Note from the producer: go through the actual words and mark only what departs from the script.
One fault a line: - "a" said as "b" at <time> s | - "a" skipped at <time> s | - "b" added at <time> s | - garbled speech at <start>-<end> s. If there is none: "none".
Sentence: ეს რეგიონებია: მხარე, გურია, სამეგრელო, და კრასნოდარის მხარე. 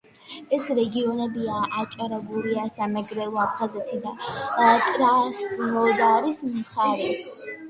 - "მხარე" said as "აჭარა" at 1.8 s
- "აფხაზეთი" added at 3.4 s